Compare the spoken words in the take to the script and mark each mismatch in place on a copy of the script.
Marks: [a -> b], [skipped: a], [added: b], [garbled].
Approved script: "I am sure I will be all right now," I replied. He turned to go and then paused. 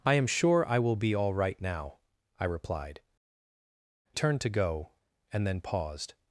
"I am sure I will be all right now," I replied. [skipped: He] turned to go and then paused.